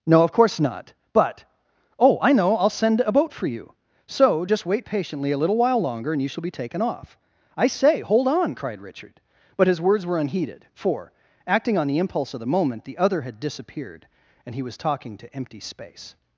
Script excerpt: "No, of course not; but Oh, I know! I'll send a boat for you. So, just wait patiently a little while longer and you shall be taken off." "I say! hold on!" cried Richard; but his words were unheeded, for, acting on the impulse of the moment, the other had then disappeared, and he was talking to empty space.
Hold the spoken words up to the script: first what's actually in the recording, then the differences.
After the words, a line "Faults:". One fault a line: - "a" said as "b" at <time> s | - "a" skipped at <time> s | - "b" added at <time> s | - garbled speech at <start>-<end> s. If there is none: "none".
"No, of course not; but Oh, I know! I'll send a boat for you. So, just wait patiently a little while longer and you shall be taken off." "I say! hold on!" cried Richard; but his words were unheeded, for, acting on the impulse of the moment, the other had disappeared, and he was talking to empty space.
Faults:
- "then" skipped at 13.4 s